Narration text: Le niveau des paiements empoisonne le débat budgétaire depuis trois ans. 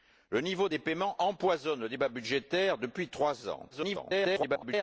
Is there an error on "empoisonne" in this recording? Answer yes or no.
no